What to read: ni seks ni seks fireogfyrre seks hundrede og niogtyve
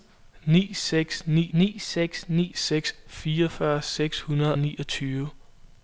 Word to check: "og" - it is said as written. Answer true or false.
false